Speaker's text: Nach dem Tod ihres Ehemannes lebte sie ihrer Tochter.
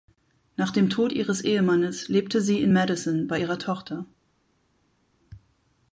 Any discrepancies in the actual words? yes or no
yes